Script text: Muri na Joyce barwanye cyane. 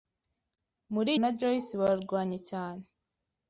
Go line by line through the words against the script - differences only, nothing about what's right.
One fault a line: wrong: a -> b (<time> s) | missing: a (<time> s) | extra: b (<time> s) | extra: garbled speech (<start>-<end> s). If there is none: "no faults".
no faults